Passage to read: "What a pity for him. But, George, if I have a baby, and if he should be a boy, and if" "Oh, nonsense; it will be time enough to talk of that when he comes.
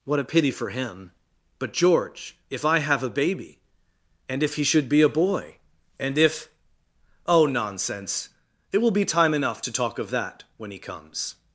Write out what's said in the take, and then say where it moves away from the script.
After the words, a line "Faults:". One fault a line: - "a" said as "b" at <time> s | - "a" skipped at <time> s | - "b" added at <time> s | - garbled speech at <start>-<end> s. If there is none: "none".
"What a pity for him. But, George, if I have a baby, and if he should be a boy, and if" "Oh, nonsense; it will be time enough to talk of that when he comes.
Faults:
none